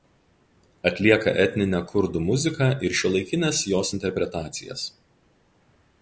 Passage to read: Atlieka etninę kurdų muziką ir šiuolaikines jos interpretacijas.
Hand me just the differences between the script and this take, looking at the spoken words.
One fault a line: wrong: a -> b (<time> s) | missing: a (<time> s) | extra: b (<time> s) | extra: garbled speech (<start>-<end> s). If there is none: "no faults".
no faults